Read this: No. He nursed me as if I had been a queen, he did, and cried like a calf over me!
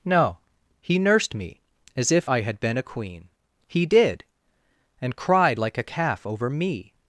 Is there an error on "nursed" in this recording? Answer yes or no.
no